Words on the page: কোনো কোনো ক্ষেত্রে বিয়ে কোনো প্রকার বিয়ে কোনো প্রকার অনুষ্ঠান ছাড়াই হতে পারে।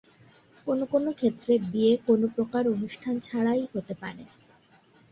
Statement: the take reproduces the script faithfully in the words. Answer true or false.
false